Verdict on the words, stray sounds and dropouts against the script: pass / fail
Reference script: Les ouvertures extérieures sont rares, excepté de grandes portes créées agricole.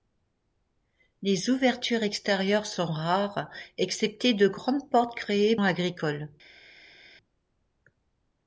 pass